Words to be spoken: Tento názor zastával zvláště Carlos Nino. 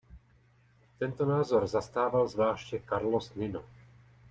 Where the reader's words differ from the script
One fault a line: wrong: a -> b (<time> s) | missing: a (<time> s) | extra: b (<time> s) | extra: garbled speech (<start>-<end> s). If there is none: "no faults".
no faults